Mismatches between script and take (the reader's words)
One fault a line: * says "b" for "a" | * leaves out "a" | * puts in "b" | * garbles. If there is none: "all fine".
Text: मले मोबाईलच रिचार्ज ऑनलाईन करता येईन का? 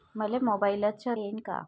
* leaves out "रिचार्ज ऑनलाईन करता"